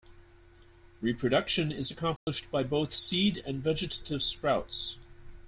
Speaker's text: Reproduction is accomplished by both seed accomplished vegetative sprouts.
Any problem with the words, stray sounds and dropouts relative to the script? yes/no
yes